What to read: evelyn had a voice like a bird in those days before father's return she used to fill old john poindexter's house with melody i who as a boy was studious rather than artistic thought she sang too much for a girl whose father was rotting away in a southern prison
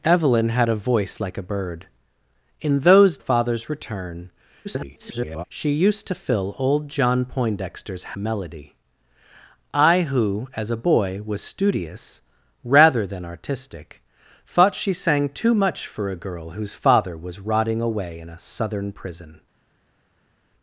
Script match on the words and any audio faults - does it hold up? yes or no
no